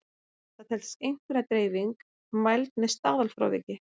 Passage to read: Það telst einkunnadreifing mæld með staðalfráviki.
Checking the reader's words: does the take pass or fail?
pass